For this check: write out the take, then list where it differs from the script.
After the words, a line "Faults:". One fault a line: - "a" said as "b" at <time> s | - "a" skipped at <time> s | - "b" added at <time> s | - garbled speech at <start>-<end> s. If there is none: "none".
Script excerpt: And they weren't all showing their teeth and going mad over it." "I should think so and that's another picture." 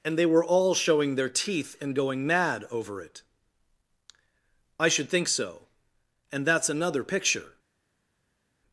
And they were all showing their teeth and going mad over it." "I should think so and that's another picture."
Faults:
- "weren't" said as "were" at 0.2 s